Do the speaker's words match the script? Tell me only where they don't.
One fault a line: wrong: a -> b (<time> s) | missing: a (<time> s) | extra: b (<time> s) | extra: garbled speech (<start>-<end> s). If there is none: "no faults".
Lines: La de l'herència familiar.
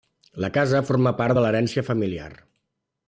extra: casa forma part (0.6 s)